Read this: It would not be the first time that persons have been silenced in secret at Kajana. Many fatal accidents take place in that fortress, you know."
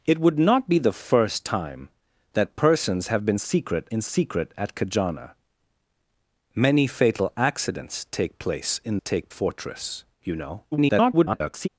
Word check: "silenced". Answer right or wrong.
wrong